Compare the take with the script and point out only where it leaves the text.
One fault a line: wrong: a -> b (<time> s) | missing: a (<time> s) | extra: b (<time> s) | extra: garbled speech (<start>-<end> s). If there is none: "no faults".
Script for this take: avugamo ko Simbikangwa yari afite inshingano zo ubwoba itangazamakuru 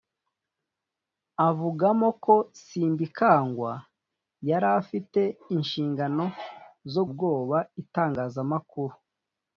no faults